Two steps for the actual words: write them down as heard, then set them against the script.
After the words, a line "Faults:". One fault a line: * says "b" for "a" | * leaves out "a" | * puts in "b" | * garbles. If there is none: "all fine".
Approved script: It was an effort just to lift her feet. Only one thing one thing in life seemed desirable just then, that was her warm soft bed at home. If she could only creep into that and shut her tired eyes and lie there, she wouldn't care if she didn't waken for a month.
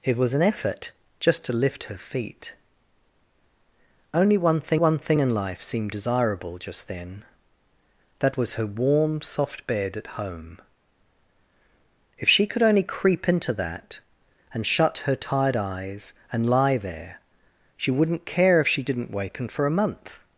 It was an effort just to lift her feet. Only one thing one thing in life seemed desirable just then, that was her warm soft bed at home. If she could only creep into that and shut her tired eyes and lie there, she wouldn't care if she didn't waken for a month.
Faults:
all fine